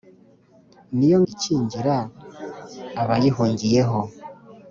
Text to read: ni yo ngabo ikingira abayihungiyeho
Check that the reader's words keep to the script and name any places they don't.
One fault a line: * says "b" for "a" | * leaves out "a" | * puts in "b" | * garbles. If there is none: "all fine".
* leaves out "ngabo"